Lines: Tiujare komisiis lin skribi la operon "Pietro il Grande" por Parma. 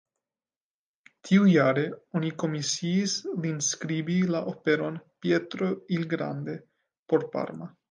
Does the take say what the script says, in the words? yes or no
no